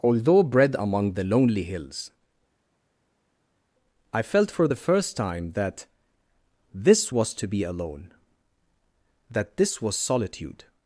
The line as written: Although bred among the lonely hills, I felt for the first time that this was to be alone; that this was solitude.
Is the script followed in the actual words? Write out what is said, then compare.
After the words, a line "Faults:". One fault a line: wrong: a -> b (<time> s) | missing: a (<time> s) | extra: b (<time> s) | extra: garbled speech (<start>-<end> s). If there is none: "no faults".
Although bred among the lonely hills, I felt for the first time that this was to be alone; that this was solitude.
Faults:
no faults